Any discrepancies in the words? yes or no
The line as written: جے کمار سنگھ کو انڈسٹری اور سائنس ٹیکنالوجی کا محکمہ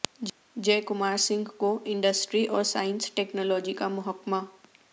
no